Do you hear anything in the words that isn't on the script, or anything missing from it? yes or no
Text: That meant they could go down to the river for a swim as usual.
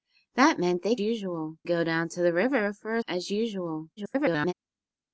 yes